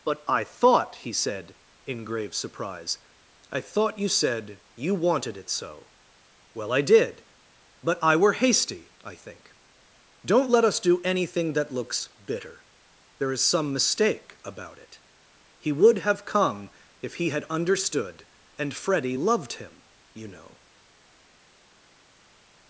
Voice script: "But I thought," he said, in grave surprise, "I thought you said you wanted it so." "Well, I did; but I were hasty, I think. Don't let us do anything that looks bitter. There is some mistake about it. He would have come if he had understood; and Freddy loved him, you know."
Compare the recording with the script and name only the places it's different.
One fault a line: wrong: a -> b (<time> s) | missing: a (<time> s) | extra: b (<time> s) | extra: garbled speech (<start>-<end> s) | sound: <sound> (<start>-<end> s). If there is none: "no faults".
no faults